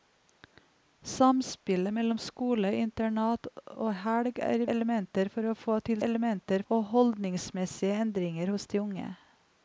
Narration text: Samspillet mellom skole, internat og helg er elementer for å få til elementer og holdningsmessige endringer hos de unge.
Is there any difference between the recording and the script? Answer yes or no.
no